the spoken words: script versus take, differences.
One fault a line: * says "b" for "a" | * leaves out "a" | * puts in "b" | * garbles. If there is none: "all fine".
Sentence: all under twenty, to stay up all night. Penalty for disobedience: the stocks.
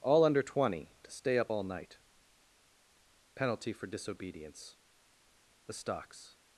all fine